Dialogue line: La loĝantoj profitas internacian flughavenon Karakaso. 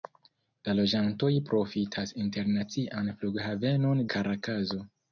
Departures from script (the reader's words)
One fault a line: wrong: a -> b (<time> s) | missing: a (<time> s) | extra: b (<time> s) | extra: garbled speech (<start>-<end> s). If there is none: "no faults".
no faults